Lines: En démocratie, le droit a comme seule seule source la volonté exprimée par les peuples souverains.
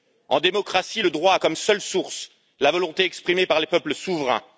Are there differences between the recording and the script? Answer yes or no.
yes